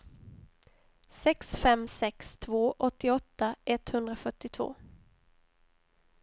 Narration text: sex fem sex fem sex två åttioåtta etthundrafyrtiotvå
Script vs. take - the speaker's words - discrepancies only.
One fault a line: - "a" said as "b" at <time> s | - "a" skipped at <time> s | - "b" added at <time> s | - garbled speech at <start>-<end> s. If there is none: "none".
- "fem sex" skipped at 2.4 s